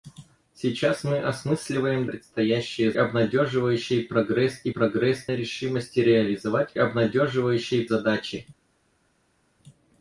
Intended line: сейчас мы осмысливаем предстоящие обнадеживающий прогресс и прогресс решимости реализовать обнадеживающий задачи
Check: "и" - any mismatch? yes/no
no